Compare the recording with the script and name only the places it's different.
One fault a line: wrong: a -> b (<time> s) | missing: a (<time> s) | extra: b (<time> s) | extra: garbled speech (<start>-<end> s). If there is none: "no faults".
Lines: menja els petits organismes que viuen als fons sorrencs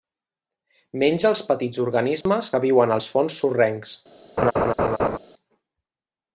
no faults